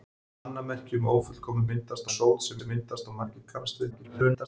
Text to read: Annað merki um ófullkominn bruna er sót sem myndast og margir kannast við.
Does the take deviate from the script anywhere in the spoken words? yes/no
yes